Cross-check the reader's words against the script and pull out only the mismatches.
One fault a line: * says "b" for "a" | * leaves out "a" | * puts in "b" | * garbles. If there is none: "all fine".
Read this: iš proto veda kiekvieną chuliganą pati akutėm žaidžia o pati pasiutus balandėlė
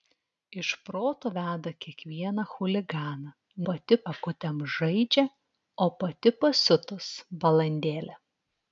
all fine